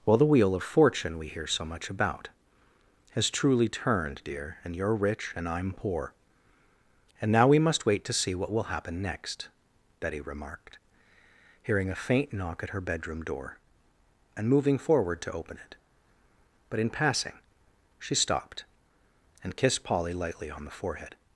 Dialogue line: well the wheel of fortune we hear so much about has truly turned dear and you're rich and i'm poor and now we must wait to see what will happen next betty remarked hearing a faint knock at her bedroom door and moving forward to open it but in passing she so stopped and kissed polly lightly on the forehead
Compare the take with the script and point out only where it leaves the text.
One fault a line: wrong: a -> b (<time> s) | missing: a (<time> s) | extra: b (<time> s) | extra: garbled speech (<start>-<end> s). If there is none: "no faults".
missing: so (18.1 s)